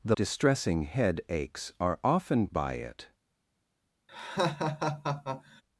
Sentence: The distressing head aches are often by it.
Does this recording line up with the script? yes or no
yes